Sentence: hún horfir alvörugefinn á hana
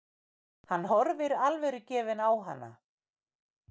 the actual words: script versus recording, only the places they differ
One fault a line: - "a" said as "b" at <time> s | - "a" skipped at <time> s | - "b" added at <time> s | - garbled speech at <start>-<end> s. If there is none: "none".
- "hún" said as "hann" at 0.7 s